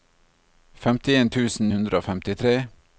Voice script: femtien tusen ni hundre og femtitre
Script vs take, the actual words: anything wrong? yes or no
yes